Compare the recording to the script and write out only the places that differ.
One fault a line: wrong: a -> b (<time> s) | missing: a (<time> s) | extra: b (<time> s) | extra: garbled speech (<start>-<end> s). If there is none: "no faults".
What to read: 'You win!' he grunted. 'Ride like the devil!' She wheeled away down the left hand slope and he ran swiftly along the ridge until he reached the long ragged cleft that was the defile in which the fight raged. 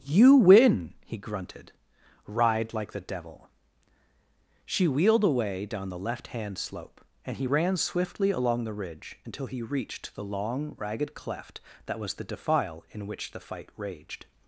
no faults